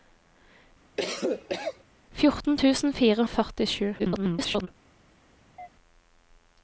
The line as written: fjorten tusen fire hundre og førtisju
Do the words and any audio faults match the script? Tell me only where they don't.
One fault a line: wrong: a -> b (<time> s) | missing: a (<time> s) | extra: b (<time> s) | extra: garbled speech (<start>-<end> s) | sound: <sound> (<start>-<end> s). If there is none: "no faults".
sound: cough (1.0-1.8 s)
missing: hundre (3.3 s)
extra: garbled speech (4.0-4.7 s)
sound: chirp (5.6-5.7 s)